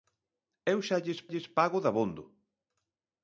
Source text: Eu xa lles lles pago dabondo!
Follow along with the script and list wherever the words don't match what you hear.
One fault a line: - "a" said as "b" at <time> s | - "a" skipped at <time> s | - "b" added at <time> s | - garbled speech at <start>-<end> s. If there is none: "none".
none